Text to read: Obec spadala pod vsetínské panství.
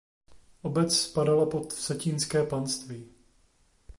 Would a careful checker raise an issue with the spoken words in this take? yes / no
no